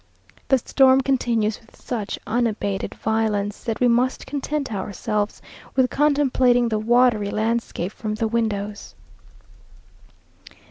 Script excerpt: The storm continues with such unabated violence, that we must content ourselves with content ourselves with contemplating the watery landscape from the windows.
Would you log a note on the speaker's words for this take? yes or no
yes